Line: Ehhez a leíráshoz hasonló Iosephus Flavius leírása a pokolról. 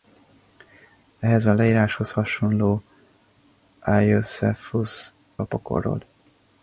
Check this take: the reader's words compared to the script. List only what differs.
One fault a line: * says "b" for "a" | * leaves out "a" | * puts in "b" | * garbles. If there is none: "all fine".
* leaves out "Flavius leírása"